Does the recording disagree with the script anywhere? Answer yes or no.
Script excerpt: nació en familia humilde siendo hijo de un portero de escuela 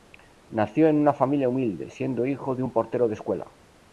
yes